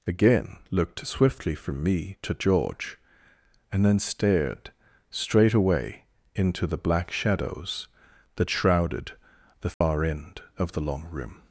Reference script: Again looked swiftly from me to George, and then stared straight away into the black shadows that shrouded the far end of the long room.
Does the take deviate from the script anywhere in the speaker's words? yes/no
no